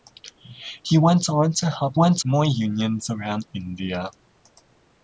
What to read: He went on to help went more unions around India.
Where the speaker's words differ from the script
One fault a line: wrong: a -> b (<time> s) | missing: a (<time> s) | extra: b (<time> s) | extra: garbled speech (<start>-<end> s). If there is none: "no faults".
no faults